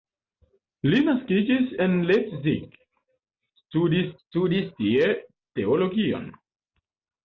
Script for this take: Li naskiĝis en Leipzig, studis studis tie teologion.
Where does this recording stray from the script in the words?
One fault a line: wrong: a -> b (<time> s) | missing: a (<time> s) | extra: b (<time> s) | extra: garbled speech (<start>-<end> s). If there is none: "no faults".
no faults